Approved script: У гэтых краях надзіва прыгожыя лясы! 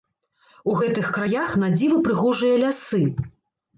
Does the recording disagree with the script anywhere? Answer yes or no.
no